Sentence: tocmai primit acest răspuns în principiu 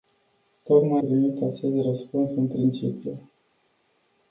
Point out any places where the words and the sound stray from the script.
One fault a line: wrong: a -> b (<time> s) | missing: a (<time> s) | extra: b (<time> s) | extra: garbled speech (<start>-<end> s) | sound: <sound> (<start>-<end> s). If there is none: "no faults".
no faults